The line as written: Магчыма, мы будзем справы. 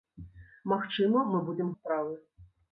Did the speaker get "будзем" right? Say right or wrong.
right